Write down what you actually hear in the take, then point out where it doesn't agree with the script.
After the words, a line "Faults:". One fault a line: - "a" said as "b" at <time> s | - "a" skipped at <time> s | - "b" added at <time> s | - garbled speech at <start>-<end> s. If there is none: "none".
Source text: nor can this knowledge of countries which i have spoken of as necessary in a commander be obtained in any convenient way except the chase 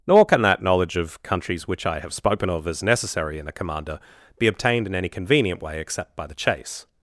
nor can that knowledge of countries which i have spoken of as necessary in a commander be obtained in any convenient way except by the chase
Faults:
- "this" said as "that" at 0.4 s
- "by" added at 6.2 s